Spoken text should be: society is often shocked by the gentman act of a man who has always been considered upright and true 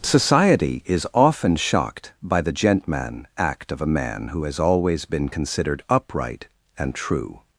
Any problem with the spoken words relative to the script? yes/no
no